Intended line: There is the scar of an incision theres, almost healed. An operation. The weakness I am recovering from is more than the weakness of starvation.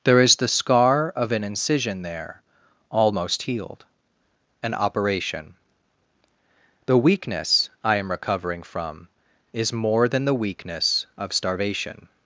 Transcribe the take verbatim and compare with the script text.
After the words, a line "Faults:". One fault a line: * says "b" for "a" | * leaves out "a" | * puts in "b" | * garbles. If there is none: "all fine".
There is the scar of an incision there, almost healed. An operation. The weakness I am recovering from is more than the weakness of starvation.
Faults:
* says "there" for "theres"